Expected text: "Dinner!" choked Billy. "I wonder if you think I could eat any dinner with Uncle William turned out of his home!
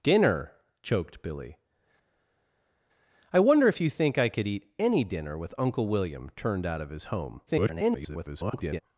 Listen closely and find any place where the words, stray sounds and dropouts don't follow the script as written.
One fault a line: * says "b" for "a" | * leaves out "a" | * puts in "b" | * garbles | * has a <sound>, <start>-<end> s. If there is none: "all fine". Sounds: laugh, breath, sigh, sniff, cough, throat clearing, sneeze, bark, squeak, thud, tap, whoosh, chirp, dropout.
* garbles